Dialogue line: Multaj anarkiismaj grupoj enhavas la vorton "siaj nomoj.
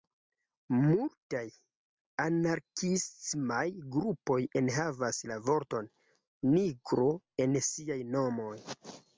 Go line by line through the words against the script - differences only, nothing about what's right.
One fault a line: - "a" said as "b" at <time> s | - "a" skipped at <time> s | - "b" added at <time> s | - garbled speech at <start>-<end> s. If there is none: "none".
- "nigro en" added at 6.5 s